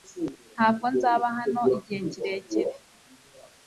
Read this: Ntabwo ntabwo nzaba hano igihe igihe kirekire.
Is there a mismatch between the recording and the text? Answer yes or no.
yes